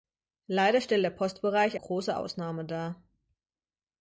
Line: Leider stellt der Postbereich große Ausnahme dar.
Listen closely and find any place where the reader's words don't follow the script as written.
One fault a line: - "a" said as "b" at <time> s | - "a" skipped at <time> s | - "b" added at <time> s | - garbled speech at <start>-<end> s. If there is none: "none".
none